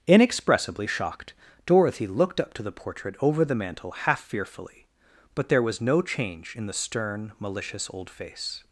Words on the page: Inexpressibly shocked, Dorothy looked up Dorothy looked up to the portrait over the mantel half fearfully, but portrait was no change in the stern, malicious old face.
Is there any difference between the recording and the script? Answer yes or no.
yes